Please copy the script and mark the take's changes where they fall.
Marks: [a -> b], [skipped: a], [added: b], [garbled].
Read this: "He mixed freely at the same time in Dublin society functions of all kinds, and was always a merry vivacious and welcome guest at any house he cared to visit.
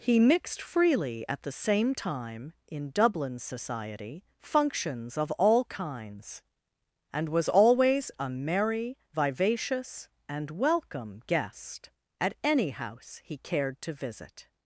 "He mixed freely at the same time in Dublin society functions of all kinds, and was always a merry vivacious and welcome guest at any house he cared to visit.